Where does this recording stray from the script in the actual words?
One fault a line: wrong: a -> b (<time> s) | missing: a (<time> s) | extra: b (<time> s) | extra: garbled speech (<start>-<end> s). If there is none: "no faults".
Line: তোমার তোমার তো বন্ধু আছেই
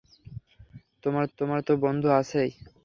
no faults